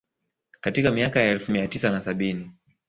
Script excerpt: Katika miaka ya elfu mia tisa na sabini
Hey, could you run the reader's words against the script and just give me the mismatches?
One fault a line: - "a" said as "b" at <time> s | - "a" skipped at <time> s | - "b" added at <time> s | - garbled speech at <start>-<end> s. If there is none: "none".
none